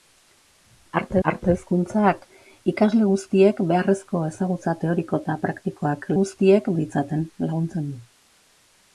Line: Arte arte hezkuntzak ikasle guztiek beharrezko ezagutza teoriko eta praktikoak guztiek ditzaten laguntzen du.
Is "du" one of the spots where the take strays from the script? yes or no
no